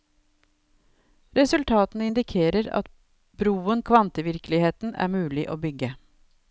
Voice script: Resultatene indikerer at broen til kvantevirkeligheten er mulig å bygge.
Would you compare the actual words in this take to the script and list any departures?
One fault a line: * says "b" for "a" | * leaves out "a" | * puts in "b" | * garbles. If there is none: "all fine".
* leaves out "til"